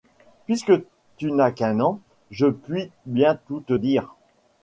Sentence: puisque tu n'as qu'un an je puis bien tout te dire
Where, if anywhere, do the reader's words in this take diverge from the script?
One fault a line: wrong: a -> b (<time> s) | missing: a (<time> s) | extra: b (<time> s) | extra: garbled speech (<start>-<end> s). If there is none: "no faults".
no faults